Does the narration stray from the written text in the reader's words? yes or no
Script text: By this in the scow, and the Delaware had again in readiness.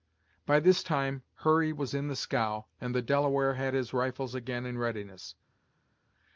yes